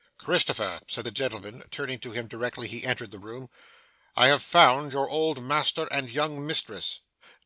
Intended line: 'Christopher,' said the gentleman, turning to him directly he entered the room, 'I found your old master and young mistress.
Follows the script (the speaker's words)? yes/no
no